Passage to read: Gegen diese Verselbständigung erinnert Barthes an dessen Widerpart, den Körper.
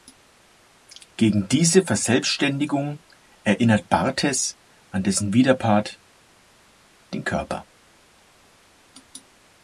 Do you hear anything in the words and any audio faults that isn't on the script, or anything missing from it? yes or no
no